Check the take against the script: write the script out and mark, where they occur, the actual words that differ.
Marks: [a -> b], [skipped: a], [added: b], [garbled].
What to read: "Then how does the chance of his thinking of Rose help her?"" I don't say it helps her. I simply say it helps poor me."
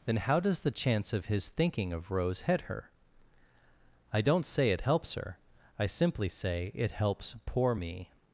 "Then how does the chance of his thinking of Rose [help -> head] her?"" I don't say it helps her. I simply say it helps poor me."